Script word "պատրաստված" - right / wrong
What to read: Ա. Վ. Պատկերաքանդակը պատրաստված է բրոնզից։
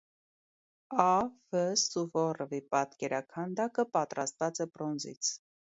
right